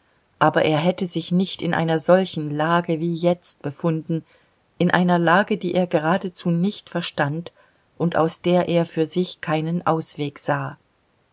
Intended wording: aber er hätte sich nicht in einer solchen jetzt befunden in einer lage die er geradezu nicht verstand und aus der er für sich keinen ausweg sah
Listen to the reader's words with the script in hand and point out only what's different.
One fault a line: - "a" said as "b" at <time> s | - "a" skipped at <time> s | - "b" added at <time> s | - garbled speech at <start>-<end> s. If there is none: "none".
- "lage wie" added at 2.5 s